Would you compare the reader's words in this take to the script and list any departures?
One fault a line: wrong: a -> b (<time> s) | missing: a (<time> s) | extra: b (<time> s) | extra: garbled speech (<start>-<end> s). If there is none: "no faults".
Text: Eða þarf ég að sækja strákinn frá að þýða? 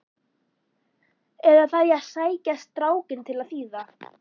wrong: frá -> til (3.3 s)